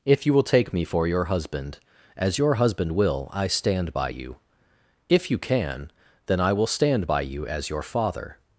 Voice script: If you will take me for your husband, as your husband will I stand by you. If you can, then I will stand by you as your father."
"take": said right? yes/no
yes